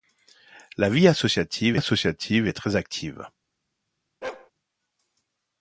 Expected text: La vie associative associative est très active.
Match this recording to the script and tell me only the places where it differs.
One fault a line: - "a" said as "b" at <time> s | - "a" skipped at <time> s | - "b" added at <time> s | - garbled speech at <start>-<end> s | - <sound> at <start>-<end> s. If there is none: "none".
- bark at 4.2-4.5 s